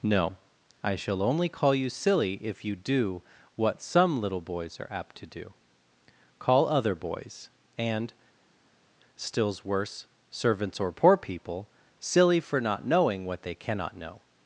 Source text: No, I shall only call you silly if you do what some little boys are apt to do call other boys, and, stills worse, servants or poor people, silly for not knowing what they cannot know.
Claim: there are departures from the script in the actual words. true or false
false